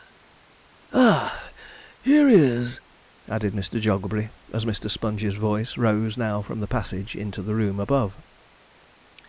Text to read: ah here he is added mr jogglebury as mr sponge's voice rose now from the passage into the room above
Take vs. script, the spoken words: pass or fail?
pass